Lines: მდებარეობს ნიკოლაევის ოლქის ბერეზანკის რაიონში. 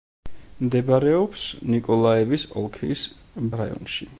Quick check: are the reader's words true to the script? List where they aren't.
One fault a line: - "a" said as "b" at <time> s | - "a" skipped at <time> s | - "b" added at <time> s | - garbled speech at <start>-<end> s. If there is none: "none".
- "ბერეზანკის" skipped at 3.0 s